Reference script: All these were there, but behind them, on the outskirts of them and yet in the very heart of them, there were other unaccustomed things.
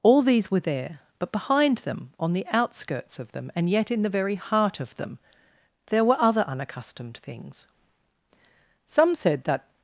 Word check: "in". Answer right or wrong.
right